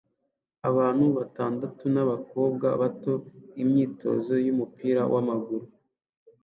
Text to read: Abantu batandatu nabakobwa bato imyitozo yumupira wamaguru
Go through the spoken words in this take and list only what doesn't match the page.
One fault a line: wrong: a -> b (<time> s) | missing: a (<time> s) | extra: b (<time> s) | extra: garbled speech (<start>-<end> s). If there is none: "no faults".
no faults